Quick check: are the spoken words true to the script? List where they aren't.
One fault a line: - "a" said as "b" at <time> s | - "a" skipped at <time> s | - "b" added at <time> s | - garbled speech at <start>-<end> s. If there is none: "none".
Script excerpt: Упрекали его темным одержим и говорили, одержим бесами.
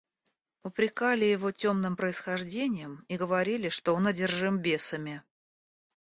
- "одержим" said as "происхождением" at 1.9 s
- "что он" added at 3.7 s